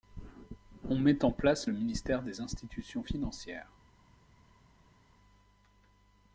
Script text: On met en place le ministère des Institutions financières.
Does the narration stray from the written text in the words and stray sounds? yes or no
no